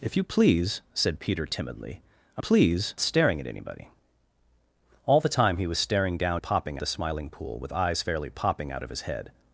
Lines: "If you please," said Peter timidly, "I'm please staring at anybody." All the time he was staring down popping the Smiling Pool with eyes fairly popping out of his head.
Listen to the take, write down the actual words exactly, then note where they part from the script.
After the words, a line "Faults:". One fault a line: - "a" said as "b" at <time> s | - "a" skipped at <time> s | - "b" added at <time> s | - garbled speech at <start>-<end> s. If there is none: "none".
"If you please," said Peter timidly, "I'm please staring at anybody." All the time he was staring down popping the Smiling Pool with eyes fairly popping out of his head.
Faults:
none